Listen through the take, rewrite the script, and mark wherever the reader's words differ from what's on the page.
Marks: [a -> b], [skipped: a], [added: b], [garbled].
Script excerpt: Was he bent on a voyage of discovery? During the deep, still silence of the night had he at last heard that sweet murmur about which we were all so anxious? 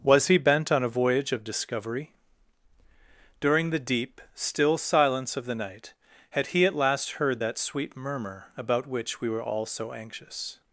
Was he bent on a voyage of discovery? During the deep, still silence of the night had he at last heard that sweet murmur about which we were all so anxious?